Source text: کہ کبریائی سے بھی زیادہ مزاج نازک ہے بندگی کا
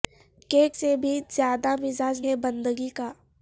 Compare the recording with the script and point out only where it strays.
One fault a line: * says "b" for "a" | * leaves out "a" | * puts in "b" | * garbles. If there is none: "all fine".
* leaves out "کبریائی"
* leaves out "نازک"